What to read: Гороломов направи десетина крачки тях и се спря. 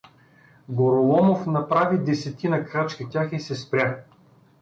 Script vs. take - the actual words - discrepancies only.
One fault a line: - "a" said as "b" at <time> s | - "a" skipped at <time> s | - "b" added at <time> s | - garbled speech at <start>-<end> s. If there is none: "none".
none